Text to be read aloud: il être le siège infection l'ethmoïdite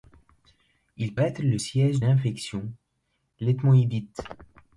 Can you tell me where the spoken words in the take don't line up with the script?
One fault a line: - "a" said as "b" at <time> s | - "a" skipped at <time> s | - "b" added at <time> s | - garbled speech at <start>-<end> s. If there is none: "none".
none